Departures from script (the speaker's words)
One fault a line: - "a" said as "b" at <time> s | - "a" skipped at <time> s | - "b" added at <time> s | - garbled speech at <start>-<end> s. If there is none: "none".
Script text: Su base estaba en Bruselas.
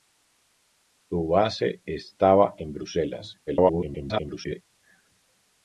- garbled speech at 3.5-4.6 s